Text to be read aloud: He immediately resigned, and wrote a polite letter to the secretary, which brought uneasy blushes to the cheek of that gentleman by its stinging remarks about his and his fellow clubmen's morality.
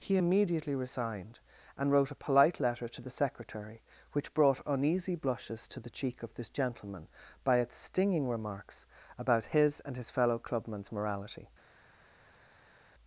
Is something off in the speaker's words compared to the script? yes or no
yes